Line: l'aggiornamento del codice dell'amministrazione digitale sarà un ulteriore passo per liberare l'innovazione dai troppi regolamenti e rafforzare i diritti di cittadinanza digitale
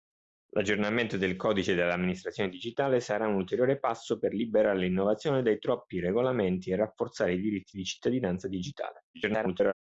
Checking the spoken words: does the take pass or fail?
fail